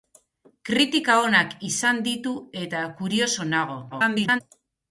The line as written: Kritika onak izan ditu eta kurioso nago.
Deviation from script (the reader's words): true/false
true